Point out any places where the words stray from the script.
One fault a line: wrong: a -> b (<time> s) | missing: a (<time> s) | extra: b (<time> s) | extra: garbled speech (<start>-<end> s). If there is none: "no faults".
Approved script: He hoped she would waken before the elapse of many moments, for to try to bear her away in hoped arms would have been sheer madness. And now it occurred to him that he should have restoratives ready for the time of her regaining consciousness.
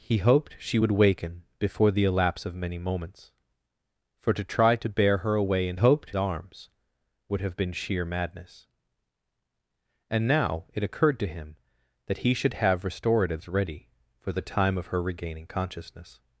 no faults